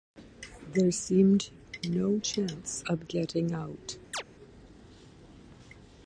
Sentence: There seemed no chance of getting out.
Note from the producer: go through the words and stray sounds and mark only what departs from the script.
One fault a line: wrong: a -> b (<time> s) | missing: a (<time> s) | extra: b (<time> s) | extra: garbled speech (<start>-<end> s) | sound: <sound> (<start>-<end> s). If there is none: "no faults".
sound: chirp (4.1-4.2 s)